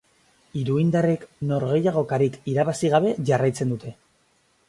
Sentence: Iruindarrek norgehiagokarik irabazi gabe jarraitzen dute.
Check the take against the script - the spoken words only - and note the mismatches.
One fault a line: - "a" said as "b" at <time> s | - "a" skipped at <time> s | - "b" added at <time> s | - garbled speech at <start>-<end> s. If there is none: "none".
none